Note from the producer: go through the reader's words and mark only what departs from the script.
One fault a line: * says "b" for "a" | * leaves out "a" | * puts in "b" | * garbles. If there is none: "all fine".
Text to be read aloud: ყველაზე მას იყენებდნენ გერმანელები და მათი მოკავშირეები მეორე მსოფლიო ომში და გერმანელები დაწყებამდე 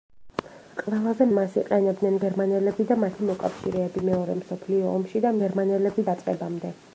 all fine